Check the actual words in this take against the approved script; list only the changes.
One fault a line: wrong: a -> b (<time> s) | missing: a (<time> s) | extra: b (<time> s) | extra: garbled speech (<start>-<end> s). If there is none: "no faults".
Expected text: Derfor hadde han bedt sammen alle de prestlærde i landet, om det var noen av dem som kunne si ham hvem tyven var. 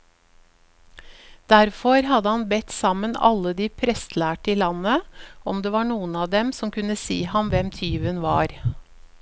no faults